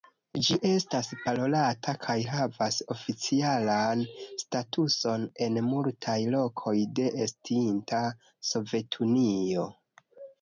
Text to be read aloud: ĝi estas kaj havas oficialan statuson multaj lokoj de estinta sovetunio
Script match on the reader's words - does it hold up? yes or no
no